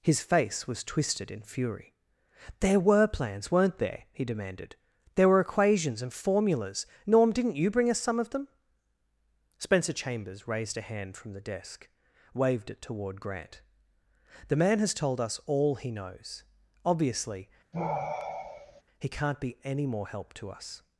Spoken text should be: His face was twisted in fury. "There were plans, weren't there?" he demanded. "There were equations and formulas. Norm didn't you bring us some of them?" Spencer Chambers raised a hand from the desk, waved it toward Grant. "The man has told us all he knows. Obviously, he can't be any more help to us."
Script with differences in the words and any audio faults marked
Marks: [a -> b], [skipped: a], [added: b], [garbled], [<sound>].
His face was twisted in fury. "There were plans, weren't there?" he demanded. "There were equations and formulas. Norm didn't you bring us some of them?" Spencer Chambers raised a hand from the desk, waved it toward Grant. "The man has told us all he knows. Obviously, [sigh] he can't be any more help to us."